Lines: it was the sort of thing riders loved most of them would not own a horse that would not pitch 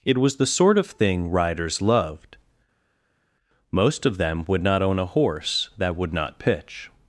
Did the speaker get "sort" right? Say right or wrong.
right